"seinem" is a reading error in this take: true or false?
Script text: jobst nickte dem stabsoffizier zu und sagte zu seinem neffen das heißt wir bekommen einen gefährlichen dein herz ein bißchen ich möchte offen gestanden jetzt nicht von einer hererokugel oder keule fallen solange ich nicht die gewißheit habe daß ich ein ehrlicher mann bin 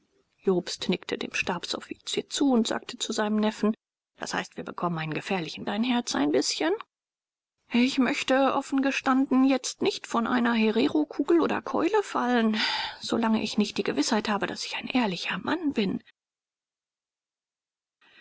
false